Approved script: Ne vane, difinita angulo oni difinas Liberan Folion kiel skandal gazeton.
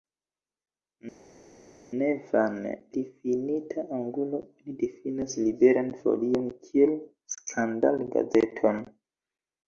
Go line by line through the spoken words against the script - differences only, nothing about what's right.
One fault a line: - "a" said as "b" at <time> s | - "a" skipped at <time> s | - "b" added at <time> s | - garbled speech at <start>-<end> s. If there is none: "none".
none